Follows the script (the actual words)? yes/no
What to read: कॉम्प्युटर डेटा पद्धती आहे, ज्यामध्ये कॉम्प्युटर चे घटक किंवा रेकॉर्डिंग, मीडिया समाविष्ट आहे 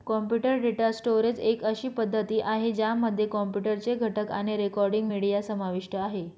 no